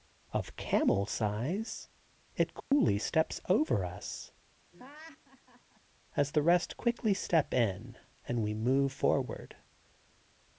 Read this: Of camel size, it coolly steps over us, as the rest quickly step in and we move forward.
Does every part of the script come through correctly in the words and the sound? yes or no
no